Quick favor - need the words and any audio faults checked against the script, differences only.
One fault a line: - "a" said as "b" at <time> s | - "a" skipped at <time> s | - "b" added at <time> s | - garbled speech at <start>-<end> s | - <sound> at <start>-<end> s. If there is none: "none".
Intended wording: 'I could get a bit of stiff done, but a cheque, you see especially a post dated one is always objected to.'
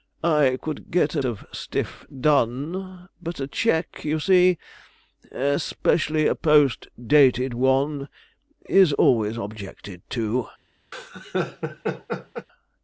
- "bit" skipped at 1.2 s
- laugh at 10.9-12.5 s